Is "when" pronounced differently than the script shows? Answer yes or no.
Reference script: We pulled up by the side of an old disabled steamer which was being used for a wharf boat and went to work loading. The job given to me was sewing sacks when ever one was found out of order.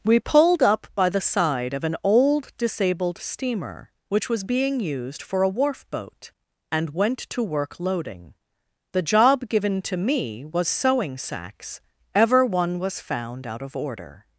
yes